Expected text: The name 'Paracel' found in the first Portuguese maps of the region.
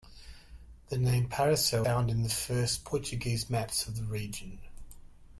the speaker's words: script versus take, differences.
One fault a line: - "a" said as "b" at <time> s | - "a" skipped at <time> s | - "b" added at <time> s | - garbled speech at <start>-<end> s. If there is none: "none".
none